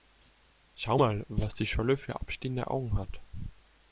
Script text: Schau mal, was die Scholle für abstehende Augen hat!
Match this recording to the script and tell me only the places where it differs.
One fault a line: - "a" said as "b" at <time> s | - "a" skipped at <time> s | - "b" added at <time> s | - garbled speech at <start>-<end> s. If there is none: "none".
none